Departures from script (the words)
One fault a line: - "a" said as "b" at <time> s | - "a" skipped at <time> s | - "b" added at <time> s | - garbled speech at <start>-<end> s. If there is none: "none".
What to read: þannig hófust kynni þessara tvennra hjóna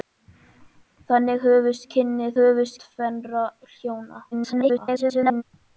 - "þessara" said as "hófust" at 2.4 s
- garbled speech at 4.3-5.4 s